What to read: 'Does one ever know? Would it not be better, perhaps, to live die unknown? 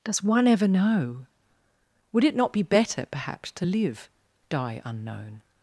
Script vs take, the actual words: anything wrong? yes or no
no